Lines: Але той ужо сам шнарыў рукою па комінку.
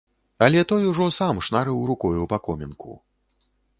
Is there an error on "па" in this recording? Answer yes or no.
no